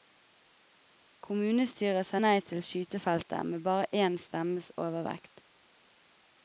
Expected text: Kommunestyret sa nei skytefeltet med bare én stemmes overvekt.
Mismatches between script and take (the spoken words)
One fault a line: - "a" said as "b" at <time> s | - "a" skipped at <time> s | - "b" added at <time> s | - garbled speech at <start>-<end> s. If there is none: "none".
- "til" added at 2.5 s